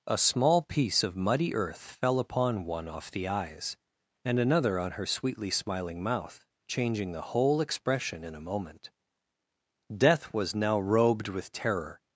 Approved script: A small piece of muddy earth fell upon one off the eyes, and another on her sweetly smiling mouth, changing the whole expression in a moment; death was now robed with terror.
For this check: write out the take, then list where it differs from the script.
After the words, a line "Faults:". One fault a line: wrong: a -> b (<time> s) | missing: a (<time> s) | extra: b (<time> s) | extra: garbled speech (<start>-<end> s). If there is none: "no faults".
A small piece of muddy earth fell upon one off the eyes, and another on her sweetly smiling mouth, changing the whole expression in a moment; death was now robed with terror.
Faults:
no faults